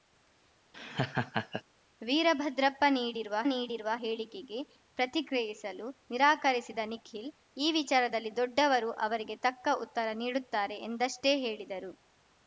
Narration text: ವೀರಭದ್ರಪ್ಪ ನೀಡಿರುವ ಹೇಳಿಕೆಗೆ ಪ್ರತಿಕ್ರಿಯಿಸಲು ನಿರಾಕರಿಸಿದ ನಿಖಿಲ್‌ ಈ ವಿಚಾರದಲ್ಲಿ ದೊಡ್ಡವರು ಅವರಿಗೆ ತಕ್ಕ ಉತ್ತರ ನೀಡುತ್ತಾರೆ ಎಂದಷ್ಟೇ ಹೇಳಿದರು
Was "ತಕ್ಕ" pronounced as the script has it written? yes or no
yes